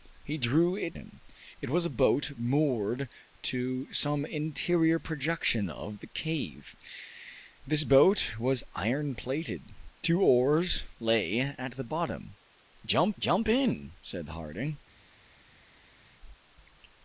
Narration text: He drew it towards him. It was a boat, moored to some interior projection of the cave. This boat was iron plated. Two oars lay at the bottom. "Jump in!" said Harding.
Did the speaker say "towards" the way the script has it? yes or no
no